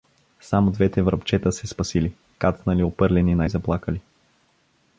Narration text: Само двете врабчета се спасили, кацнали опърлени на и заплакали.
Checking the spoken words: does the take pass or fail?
pass